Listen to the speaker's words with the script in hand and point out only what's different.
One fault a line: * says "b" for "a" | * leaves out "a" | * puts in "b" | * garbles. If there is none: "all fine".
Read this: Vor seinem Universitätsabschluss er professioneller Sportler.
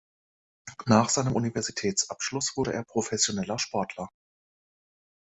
* says "Nach" for "Vor"
* puts in "wurde"